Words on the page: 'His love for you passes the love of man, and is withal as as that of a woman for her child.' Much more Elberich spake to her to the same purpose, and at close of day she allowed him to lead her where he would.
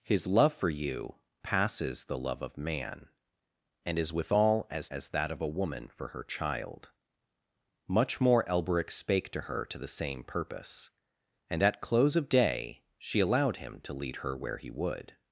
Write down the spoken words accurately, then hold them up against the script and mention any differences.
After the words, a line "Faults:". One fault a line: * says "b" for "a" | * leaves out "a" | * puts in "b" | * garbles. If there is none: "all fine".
'His love for you passes the love of man, and is withal as as that of a woman for her child.' Much more Elberich spake to her to the same purpose, and at close of day she allowed him to lead her where he would.
Faults:
all fine